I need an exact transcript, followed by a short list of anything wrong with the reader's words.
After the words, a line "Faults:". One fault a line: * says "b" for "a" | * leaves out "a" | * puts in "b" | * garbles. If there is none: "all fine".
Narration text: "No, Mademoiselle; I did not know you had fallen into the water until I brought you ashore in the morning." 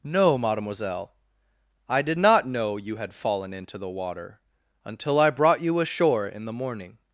"No, Mademoiselle; I did not know you had fallen into the water until I brought you ashore in the morning."
Faults:
all fine